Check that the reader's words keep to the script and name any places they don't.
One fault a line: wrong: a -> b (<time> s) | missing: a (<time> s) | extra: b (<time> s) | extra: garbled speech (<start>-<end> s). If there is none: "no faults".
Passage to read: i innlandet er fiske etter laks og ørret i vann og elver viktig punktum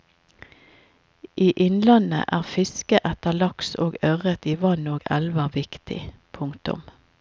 no faults